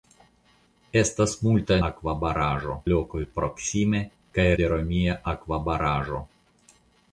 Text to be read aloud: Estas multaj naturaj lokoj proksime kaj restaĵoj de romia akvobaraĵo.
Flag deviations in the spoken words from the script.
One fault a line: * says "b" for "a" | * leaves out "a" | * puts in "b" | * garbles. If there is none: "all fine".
* says "akvobaraĵo" for "naturaj"
* leaves out "restaĵoj"